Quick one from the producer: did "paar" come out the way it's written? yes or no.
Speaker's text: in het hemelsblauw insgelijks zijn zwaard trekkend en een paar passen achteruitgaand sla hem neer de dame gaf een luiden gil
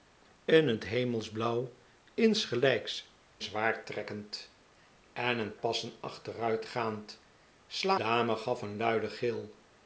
no